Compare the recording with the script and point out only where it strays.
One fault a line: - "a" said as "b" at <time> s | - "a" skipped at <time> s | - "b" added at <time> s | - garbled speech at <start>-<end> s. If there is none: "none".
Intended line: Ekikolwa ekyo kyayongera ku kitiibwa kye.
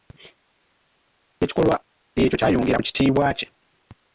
none